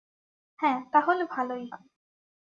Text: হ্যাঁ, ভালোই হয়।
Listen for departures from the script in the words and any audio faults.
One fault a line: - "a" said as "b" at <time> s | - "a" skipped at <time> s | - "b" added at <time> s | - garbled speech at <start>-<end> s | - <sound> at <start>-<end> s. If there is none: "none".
- "তাহলে" added at 0.9 s